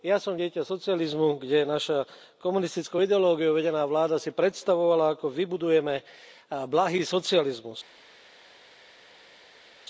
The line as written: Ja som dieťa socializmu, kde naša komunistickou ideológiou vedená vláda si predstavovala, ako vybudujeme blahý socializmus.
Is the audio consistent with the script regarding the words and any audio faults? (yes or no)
yes